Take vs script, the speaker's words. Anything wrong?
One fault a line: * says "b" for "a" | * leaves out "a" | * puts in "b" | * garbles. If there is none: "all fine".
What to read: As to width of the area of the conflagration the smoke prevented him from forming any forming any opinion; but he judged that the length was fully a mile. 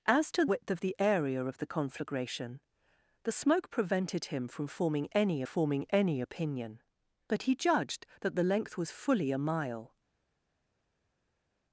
all fine